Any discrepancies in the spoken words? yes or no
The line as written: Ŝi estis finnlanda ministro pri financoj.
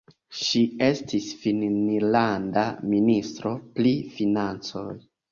no